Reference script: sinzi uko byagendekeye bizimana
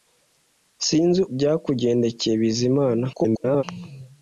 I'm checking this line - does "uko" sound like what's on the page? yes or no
no